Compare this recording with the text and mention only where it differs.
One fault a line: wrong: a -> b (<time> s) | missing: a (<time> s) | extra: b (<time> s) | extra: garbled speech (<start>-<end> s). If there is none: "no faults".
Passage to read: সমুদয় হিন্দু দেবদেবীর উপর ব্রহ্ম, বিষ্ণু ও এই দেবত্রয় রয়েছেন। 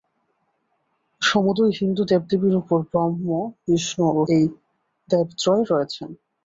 no faults